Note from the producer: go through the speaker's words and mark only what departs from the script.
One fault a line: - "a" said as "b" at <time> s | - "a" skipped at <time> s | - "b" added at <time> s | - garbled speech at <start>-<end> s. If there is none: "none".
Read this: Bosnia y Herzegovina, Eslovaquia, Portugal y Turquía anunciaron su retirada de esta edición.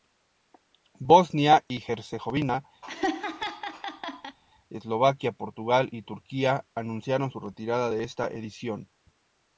none